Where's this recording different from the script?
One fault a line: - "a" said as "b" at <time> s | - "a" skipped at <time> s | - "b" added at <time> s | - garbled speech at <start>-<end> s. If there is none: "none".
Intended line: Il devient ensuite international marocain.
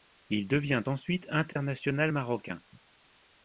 none